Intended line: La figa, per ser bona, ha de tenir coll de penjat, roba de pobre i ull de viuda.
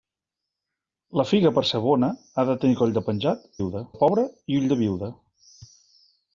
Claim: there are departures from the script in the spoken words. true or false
true